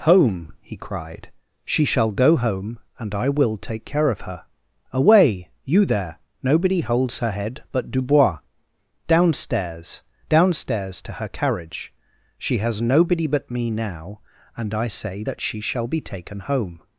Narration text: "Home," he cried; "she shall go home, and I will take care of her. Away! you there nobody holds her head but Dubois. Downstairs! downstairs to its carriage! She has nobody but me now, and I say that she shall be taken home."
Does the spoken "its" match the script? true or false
false